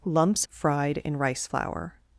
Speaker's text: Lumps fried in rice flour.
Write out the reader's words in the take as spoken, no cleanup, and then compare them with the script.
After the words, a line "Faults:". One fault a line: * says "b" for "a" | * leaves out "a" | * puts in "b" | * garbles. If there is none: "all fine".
Lumps fried in rice flour.
Faults:
all fine